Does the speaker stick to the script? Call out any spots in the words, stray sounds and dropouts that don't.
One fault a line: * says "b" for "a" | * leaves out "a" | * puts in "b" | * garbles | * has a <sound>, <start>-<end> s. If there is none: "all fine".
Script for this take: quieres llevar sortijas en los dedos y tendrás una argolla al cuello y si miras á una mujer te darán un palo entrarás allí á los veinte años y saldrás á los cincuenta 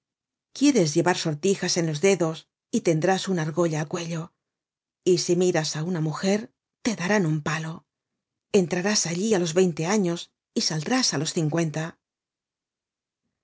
all fine